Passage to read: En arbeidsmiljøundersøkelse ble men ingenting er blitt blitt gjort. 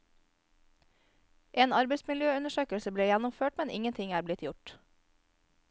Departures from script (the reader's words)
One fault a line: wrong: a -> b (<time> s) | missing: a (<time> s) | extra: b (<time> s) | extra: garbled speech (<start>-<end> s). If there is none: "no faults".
extra: gjennomført (3.1 s)
missing: blitt (4.5 s)